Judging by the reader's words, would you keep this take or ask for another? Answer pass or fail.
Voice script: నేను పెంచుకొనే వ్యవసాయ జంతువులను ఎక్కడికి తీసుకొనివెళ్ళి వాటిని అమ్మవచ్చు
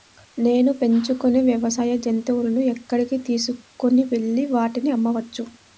pass